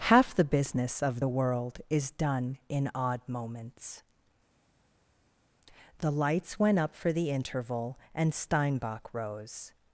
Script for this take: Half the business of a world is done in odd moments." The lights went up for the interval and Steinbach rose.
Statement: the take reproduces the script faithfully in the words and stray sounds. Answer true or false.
false